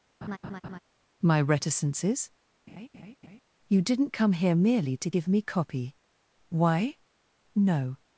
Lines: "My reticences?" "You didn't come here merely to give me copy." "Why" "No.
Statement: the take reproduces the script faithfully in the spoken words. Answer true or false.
true